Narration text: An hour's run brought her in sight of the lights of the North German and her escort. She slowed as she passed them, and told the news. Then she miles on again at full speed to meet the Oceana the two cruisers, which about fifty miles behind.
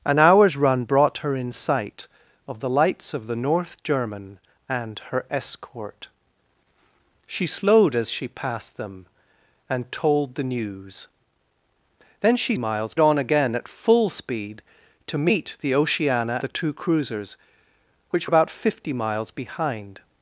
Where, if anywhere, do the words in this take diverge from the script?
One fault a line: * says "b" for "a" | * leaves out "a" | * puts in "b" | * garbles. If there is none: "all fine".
all fine